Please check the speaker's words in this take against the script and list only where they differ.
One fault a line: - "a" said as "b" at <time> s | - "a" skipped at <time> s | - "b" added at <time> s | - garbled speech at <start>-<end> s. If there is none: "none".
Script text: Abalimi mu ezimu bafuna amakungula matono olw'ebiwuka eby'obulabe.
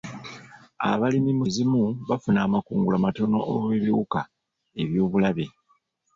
none